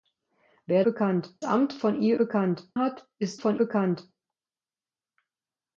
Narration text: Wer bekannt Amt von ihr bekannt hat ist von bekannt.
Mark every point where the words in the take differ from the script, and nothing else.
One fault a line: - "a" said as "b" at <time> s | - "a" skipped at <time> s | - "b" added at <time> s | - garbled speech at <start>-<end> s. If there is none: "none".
none